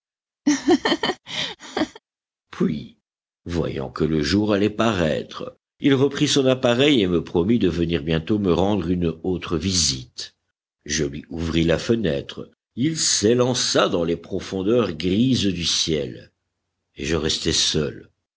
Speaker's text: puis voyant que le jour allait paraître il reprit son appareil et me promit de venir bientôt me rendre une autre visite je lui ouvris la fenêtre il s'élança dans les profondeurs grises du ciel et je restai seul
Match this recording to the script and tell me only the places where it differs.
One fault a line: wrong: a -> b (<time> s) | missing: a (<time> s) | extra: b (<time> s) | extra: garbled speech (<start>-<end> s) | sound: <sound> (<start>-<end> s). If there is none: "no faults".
sound: laugh (0.4-2.0 s)